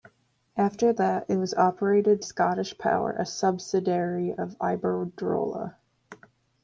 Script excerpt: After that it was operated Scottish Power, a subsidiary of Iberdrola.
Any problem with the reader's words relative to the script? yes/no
no